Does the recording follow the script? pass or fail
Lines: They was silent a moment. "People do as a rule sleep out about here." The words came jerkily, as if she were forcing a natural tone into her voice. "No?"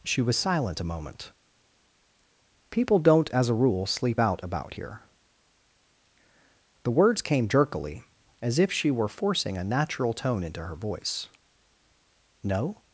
fail